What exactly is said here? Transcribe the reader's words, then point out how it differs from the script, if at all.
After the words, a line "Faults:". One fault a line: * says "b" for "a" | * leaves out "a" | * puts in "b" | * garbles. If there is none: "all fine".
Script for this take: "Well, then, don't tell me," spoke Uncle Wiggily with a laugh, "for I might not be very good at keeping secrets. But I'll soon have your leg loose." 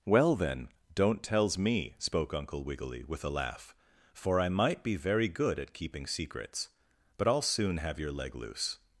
"Well, then, don't tells me," spoke Uncle Wiggily with a laugh, "for I might be very good at keeping secrets. But I'll soon have your leg loose."
Faults:
* says "tells" for "tell"
* leaves out "not"